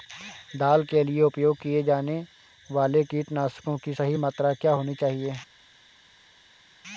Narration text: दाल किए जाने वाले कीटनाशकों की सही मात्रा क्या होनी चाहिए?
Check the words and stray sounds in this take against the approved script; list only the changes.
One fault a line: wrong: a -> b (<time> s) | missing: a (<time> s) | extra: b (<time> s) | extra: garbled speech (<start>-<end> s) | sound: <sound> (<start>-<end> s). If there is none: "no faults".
extra: के लिए उपयोग (0.8 s)